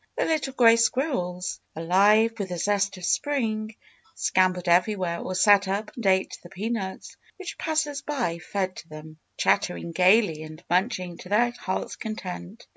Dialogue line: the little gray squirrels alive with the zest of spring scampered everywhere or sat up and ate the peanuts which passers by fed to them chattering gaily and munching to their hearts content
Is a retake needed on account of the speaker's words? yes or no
no